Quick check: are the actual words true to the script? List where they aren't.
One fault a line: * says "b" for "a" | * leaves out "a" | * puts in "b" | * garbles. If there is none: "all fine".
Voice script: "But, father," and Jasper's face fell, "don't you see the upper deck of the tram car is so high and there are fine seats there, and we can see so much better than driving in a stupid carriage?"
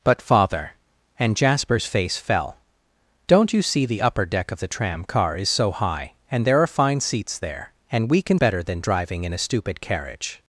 * leaves out "see so much"